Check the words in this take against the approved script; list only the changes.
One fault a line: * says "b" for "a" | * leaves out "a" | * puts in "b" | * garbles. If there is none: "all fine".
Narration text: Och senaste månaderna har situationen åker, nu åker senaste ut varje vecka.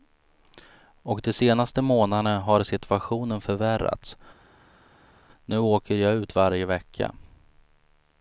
* puts in "de"
* says "förvärrats" for "åker"
* says "jag" for "senaste"